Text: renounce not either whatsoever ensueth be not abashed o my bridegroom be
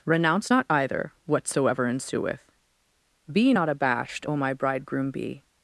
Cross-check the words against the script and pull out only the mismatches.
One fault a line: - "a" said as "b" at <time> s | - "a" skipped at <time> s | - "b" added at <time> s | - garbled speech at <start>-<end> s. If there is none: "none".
none